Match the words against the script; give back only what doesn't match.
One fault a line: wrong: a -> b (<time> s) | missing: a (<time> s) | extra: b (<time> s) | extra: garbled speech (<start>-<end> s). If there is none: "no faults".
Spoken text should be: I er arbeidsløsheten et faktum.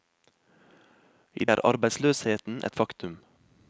no faults